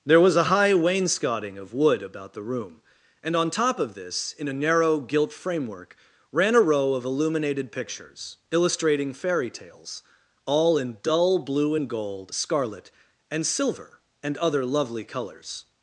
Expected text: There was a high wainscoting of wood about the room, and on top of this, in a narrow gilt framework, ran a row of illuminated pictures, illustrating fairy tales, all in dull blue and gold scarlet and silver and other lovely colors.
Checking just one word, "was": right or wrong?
right